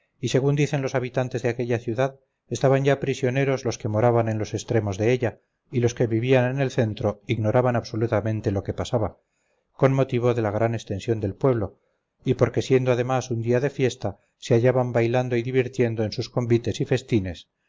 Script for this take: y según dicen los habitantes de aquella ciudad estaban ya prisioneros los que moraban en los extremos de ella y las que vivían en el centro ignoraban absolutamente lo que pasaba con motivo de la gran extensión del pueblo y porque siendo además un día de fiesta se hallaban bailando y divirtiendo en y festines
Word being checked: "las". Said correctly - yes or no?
no